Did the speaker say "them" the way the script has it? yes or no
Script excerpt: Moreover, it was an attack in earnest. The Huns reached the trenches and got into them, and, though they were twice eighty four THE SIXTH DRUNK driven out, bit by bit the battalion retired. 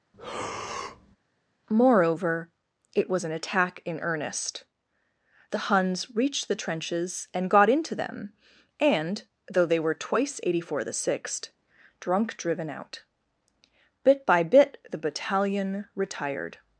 yes